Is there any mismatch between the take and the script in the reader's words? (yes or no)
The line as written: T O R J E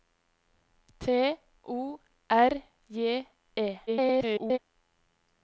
yes